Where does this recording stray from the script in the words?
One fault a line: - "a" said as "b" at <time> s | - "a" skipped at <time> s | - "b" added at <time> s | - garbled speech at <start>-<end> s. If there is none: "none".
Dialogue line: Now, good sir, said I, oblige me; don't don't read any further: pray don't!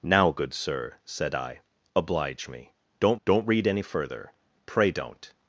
none